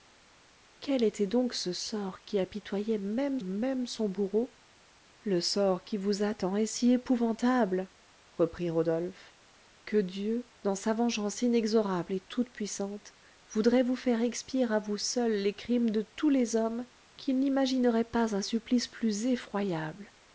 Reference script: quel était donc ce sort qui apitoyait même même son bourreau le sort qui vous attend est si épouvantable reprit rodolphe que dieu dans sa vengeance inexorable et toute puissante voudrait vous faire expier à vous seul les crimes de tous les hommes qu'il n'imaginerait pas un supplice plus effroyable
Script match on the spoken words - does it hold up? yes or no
yes